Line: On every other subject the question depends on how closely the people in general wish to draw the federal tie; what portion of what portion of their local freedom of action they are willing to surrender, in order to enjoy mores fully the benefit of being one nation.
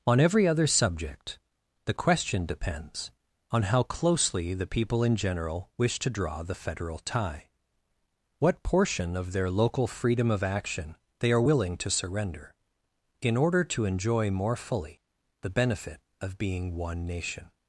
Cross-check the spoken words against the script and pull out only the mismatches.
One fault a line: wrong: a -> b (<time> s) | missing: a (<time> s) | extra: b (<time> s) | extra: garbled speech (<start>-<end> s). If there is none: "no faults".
missing: what portion of (9.3 s)
wrong: mores -> more (14.3 s)